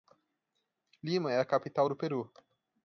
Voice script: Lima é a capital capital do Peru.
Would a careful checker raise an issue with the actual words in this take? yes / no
yes